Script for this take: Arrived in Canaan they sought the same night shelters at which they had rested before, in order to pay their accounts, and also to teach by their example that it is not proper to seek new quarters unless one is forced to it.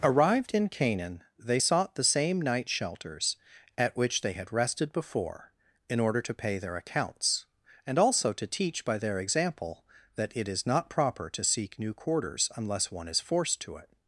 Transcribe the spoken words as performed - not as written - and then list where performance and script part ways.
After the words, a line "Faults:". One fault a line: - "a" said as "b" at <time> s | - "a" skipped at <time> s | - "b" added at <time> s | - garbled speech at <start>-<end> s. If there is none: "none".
Arrived in Canaan they sought the same night shelters at which they had rested before, in order to pay their accounts, and also to teach by their example that it is not proper to seek new quarters unless one is forced to it.
Faults:
none